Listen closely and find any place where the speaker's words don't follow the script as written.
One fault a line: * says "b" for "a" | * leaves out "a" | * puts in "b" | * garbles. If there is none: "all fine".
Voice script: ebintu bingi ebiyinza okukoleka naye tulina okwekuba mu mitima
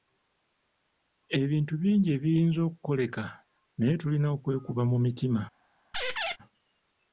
all fine